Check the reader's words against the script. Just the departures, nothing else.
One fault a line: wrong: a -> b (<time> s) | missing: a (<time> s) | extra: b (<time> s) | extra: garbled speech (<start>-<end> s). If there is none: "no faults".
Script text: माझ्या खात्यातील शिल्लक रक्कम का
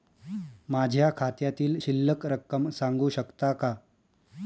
extra: सांगू शकता (2.7 s)